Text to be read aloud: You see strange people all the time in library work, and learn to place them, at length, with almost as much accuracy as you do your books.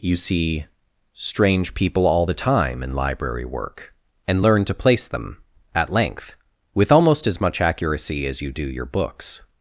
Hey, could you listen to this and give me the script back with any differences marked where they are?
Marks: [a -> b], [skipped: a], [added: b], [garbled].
You see strange people all the time in library work, and learn to place them, at length, with almost as much accuracy as you do your books.